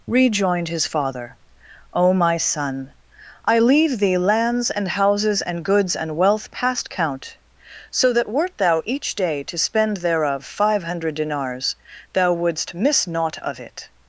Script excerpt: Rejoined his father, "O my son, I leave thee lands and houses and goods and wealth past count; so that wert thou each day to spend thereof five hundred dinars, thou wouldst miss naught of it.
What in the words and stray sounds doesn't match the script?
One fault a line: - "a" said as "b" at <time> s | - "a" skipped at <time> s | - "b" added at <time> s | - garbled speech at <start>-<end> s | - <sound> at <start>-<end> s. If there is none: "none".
none